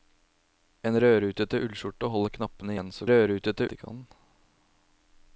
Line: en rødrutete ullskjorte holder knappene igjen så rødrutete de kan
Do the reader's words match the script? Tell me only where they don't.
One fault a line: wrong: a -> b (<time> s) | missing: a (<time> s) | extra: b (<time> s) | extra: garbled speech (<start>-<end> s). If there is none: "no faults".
no faults